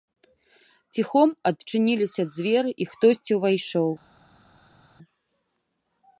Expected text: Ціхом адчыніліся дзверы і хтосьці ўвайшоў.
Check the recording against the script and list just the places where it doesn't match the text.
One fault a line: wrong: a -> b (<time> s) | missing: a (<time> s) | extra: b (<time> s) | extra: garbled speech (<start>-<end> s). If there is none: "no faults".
no faults